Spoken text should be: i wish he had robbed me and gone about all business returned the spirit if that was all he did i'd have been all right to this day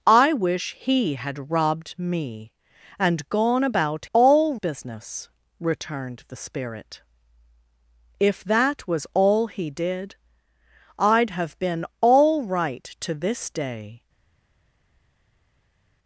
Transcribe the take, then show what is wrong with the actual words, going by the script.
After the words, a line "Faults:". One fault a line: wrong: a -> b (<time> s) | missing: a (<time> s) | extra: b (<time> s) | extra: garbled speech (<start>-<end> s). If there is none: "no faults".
i wish he had robbed me and gone about all business returned the spirit if that was all he did i'd have been all right to this day
Faults:
no faults